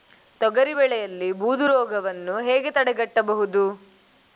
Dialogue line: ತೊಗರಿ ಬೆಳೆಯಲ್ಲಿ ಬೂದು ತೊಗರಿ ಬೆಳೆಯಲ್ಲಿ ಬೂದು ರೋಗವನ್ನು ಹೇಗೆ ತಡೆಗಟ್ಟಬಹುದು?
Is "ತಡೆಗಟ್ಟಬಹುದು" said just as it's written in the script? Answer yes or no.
yes